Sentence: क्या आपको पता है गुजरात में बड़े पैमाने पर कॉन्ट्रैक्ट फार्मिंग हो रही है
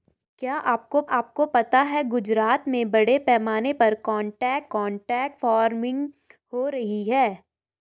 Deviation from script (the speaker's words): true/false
true